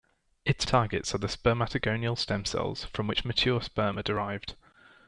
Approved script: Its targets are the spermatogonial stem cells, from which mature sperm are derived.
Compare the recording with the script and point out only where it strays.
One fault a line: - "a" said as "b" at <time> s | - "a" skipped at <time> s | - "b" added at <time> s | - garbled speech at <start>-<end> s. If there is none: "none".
none